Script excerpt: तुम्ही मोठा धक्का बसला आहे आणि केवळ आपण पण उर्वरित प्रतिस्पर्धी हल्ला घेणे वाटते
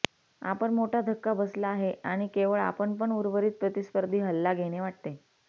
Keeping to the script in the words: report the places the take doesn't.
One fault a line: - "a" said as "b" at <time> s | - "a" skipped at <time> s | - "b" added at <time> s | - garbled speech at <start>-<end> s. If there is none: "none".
- "तुम्ही" said as "आपण" at 0.4 s